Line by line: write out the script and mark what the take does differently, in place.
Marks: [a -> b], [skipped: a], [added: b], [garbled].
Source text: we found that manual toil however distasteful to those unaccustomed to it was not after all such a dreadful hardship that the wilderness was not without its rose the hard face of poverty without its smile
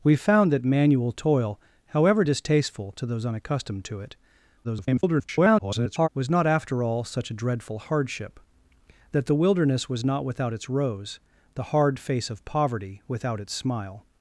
we found that manual toil however distasteful to those unaccustomed to it [garbled] was not after all such a dreadful hardship that the wilderness was not without its rose the hard face of poverty without its smile